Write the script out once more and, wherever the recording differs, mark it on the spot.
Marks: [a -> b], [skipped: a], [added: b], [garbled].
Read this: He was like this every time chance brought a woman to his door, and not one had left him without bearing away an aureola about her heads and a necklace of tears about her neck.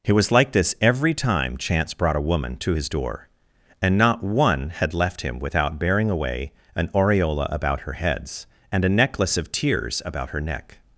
He was like this every time chance brought a woman to his door, and not one had left him without bearing away an aureola about her heads and a necklace of tears about her neck.